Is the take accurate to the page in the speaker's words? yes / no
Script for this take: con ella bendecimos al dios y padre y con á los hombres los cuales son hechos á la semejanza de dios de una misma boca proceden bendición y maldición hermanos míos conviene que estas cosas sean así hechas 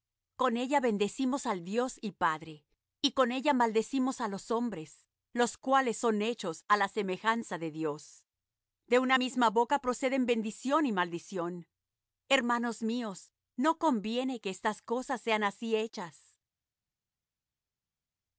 no